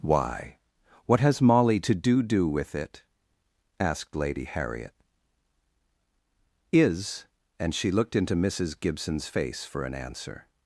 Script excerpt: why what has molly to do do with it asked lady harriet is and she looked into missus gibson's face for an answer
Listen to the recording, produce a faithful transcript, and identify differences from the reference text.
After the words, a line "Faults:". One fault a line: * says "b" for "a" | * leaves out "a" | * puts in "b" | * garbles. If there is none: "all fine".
why what has molly to do do with it asked lady harriet is and she looked into missus gibson's face for an answer
Faults:
all fine